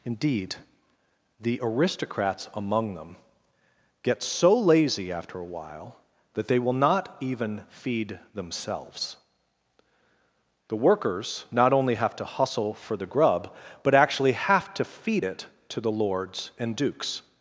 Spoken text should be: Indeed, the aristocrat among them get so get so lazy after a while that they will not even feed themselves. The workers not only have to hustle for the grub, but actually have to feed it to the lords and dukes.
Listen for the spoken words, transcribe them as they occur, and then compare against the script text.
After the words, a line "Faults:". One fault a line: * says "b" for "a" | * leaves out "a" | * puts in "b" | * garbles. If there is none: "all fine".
Indeed, the aristocrats among them get so lazy after a while that they will not even feed themselves. The workers not only have to hustle for the grub, but actually have to feed it to the lords and dukes.
Faults:
* says "aristocrats" for "aristocrat"
* leaves out "get so"